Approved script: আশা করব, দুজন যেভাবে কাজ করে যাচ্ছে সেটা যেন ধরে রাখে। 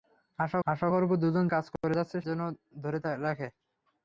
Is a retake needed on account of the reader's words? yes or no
yes